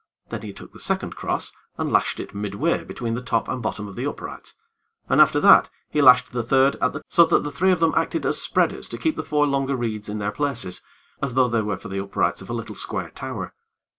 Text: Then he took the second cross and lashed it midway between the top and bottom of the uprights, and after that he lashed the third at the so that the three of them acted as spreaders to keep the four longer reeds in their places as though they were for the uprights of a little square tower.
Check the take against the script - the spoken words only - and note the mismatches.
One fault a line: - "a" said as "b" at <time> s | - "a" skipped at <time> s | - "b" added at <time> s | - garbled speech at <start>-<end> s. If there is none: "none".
none